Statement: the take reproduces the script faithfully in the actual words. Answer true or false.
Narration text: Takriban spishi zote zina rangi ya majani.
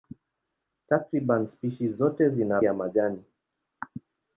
false